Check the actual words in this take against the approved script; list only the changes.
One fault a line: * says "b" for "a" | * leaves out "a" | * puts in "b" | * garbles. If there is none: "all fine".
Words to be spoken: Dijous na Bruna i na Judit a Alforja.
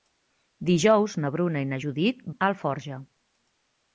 all fine